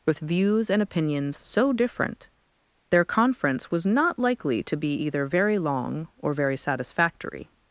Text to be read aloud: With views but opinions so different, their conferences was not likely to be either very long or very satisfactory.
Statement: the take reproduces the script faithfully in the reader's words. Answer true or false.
false